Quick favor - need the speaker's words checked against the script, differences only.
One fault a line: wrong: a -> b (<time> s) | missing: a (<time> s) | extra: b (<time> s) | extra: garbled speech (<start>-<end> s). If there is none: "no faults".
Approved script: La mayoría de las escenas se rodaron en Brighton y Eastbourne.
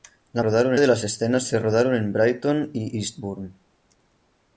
wrong: mayoría -> rodaron (0.4 s)